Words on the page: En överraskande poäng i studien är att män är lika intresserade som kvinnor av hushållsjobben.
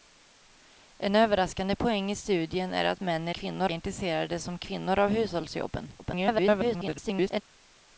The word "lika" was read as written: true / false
false